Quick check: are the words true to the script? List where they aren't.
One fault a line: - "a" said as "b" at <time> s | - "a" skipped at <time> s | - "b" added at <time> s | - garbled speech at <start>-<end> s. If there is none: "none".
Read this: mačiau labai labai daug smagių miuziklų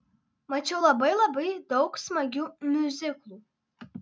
none